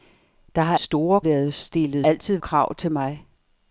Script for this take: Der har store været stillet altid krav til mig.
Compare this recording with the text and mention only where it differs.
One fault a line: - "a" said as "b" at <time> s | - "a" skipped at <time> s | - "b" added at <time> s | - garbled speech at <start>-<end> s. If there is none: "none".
none